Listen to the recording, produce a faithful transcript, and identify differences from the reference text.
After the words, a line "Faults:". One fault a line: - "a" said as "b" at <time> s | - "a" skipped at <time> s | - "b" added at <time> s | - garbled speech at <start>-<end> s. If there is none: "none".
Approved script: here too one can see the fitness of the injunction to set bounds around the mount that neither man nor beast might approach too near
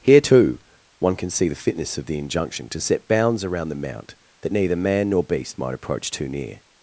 here too one can see the fitness of the injunction to set bounds around the mount that neither man nor beast might approach too near
Faults:
none